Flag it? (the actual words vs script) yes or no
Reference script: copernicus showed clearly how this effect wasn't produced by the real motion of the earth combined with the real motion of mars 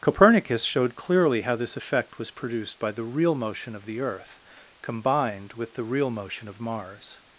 yes